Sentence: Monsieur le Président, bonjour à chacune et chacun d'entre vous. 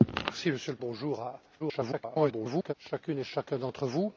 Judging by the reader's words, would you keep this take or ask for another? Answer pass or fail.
fail